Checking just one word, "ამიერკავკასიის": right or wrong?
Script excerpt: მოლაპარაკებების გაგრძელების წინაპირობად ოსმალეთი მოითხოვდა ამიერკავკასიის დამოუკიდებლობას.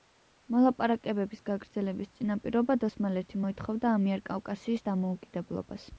right